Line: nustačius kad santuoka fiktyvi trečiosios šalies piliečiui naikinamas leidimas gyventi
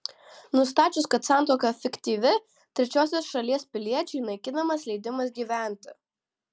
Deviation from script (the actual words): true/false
false